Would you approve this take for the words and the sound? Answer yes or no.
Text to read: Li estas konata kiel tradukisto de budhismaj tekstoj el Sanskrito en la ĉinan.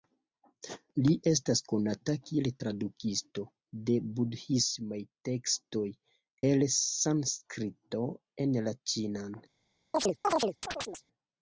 no